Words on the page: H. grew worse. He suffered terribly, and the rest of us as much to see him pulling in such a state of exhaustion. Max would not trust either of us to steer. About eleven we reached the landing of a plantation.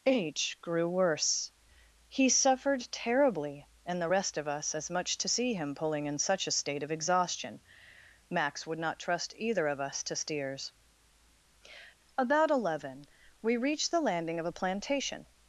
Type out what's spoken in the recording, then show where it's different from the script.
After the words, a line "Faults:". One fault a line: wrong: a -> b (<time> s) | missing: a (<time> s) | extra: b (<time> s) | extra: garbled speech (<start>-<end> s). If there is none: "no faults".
H. grew worse. He suffered terribly, and the rest of us as much to see him pulling in such a state of exhaustion. Max would not trust either of us to steers. About eleven we reached the landing of a plantation.
Faults:
wrong: steer -> steers (10.2 s)